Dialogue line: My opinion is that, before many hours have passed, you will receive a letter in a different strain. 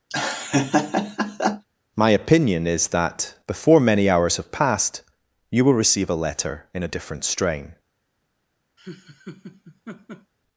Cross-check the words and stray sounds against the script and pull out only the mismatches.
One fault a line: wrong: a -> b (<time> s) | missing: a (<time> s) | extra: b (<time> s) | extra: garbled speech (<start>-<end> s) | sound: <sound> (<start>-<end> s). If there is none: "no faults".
sound: laugh (0.1-1.7 s)
sound: laugh (8.8-10.3 s)